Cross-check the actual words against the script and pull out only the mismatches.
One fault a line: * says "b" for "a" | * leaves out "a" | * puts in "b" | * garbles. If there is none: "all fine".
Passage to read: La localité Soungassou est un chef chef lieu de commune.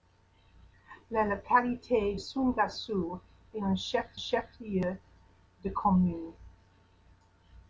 all fine